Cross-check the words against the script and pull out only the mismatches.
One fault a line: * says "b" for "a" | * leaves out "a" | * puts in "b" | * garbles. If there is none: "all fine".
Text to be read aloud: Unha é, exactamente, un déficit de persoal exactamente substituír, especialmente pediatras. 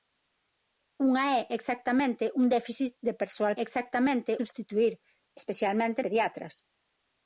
all fine